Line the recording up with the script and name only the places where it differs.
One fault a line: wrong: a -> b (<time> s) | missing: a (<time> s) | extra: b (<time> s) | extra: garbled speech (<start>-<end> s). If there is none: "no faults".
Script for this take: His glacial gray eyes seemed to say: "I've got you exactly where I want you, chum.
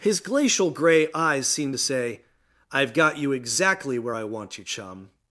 no faults